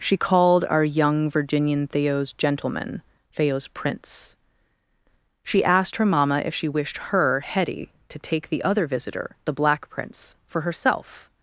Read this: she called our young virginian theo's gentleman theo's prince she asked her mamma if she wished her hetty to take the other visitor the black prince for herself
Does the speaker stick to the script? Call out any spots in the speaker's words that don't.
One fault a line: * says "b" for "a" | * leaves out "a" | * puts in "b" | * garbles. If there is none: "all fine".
all fine